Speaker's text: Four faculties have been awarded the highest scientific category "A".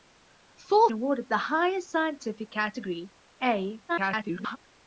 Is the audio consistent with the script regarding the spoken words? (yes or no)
no